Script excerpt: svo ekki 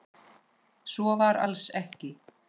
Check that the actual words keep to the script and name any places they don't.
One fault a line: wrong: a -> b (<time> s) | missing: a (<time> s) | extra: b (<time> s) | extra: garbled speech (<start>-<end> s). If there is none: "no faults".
extra: var alls (1.2 s)